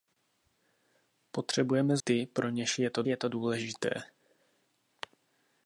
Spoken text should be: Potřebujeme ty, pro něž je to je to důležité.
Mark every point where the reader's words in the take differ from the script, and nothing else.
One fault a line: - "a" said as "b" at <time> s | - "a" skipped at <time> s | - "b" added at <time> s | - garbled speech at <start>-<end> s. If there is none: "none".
none